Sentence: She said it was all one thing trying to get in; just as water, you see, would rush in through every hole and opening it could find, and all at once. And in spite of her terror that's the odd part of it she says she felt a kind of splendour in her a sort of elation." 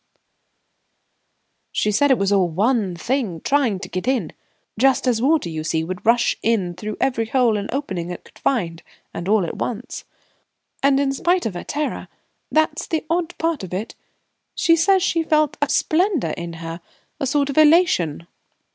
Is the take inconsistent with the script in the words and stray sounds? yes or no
yes